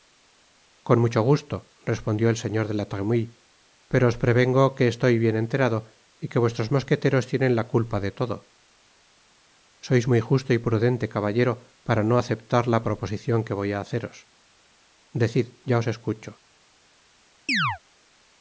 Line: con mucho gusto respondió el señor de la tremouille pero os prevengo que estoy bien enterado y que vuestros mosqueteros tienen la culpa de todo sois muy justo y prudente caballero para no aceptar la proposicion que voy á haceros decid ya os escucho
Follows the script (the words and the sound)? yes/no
no